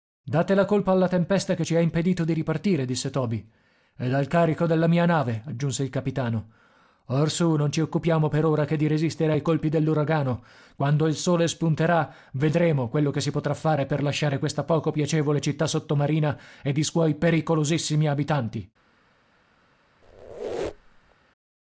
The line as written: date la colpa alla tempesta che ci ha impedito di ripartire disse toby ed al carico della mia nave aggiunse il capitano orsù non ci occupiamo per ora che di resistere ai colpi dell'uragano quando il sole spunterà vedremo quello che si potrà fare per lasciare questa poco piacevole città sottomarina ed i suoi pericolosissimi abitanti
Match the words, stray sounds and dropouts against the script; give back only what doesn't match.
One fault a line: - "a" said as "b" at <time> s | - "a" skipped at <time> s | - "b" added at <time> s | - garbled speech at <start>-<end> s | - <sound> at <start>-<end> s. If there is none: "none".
- squeak at 20.0-21.2 s